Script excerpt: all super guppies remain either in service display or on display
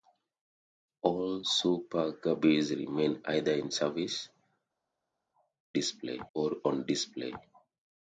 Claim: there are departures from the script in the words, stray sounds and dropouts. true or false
false